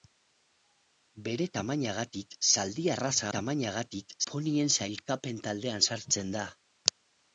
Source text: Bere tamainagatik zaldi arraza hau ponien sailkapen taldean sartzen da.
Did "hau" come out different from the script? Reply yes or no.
yes